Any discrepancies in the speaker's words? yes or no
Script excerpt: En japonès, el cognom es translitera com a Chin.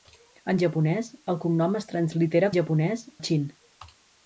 yes